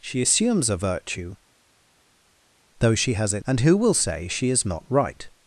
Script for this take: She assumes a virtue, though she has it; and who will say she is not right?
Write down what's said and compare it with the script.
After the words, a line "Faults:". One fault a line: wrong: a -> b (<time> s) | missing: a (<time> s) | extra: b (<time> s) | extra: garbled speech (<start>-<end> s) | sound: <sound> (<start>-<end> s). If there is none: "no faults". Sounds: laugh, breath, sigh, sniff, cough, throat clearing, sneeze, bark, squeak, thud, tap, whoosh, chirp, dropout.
She assumes a virtue, though she has it; and who will say she is not right?
Faults:
no faults